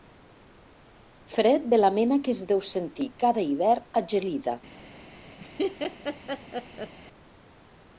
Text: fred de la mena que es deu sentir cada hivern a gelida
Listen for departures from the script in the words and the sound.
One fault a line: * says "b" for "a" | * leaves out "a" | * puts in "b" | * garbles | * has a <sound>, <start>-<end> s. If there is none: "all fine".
* has a laugh, 5.4-6.9 s